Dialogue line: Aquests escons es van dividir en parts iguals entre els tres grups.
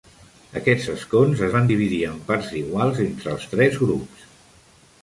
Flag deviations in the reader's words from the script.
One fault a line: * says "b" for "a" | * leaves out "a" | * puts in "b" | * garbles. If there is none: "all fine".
all fine